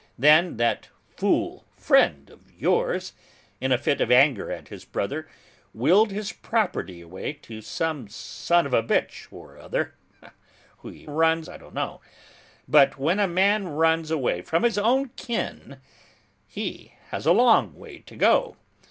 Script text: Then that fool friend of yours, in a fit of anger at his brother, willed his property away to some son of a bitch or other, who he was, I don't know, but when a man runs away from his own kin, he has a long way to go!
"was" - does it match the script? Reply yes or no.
no